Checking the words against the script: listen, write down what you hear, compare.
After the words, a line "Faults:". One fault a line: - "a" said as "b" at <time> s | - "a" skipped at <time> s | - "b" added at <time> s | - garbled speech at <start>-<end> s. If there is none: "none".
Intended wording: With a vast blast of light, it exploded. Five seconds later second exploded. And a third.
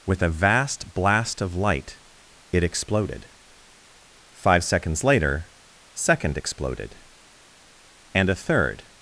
With a vast blast of light, it exploded. Five seconds later second exploded. And a third.
Faults:
none